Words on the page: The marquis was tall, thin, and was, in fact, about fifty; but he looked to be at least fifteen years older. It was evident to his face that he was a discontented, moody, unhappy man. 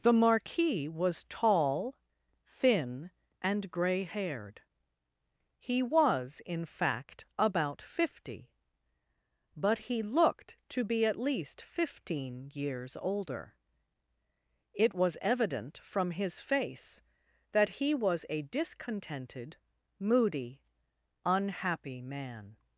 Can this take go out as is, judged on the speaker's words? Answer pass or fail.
fail